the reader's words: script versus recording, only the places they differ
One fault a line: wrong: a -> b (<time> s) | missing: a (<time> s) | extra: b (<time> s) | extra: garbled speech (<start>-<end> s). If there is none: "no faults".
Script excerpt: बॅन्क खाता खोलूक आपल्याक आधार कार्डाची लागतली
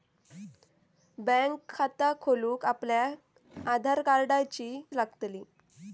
no faults